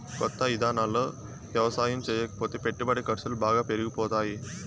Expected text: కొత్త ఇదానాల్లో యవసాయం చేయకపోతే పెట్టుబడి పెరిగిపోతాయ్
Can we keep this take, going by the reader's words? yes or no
no